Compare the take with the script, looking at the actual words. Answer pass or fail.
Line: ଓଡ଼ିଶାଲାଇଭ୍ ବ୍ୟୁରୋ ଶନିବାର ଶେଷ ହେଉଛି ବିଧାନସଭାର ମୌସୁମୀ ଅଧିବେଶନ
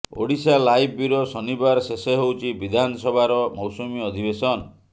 pass